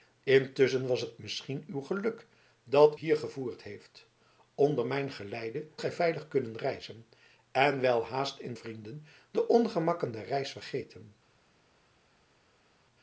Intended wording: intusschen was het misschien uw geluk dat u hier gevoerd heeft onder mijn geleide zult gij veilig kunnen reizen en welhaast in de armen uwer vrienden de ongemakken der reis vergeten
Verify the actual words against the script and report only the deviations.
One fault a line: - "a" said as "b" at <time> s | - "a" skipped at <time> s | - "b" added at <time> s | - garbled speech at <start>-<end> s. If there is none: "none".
- "u" skipped at 3.0 s
- "zult" skipped at 5.7 s
- "de armen uwer" skipped at 8.5 s